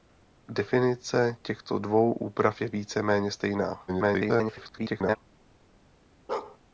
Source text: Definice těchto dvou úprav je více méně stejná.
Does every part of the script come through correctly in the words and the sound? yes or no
no